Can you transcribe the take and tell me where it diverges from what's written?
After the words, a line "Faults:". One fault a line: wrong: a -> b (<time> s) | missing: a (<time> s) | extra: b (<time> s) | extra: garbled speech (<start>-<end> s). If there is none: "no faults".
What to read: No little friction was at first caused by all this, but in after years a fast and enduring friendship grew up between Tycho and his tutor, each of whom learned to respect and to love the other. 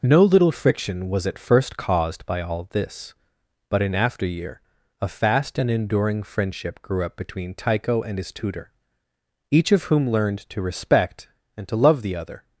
No little friction was at first caused by all this, but in after year a fast and enduring friendship grew up between Tycho and his tutor, each of whom learned to respect and to love the other.
Faults:
wrong: years -> year (4.2 s)